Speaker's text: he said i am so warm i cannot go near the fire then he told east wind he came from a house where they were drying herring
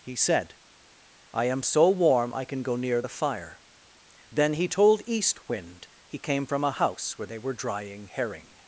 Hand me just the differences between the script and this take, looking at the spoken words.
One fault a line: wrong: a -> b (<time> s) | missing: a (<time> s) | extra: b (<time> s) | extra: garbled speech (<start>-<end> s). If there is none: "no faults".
wrong: cannot -> can (2.4 s)